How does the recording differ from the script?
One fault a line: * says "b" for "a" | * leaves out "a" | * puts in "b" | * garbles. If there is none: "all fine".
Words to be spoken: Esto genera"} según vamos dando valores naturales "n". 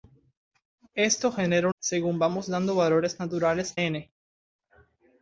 all fine